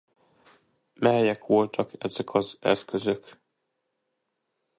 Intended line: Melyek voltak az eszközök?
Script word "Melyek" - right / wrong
right